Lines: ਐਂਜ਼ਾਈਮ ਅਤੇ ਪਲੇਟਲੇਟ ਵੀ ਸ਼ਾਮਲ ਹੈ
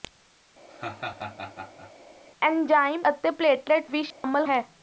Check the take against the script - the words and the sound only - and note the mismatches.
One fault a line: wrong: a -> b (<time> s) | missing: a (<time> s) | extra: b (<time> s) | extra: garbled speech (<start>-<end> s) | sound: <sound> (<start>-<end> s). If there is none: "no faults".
sound: laugh (0.7-1.9 s)
sound: dropout (4.1-4.2 s)